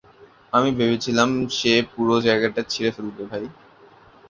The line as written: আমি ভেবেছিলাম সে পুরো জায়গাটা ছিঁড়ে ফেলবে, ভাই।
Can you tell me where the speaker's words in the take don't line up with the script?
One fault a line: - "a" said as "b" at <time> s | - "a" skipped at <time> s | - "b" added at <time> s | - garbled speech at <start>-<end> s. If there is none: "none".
none